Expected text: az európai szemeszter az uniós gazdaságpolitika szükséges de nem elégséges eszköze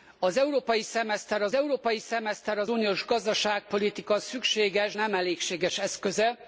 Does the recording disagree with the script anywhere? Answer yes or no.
yes